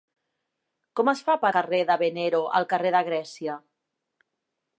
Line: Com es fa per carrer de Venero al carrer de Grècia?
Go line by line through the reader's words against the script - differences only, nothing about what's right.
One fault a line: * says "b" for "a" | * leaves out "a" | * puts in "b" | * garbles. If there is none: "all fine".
all fine